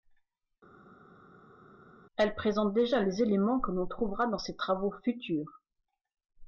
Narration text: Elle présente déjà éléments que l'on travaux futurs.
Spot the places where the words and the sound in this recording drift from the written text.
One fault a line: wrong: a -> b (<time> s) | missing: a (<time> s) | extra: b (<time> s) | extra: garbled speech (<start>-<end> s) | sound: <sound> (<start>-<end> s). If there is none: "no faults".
extra: les (3.0 s)
extra: trouvera dans ses (3.9 s)